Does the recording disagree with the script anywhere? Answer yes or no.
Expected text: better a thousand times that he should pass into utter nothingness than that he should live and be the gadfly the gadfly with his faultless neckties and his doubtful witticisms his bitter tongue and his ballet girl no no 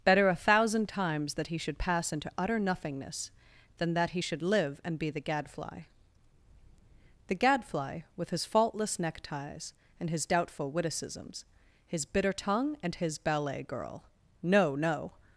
no